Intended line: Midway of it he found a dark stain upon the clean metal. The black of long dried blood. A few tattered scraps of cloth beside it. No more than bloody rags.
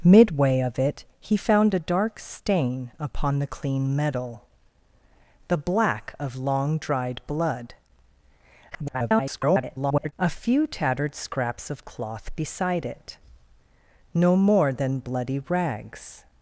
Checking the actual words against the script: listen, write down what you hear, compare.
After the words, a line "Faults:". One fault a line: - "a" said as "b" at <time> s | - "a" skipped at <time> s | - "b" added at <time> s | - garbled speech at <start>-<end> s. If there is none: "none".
Midway of it he found a dark stain upon the clean metal. The black of long dried blood. [garbled] A few tattered scraps of cloth beside it. No more than bloody rags.
Faults:
- garbled speech at 8.7-10.1 s